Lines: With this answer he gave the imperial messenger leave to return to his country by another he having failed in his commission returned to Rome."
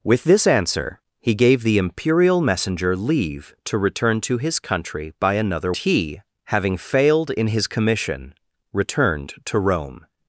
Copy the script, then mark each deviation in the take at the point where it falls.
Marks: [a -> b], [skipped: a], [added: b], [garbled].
With this answer he gave the imperial messenger leave to return to his country by another he having failed in his commission returned to Rome."